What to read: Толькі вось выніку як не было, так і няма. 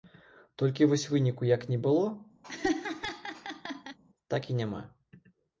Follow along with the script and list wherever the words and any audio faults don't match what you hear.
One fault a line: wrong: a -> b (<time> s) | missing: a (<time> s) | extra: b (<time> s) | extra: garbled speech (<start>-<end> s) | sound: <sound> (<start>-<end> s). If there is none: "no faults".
sound: laugh (2.4-4.0 s)